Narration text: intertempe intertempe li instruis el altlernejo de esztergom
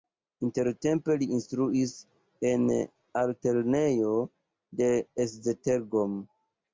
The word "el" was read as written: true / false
false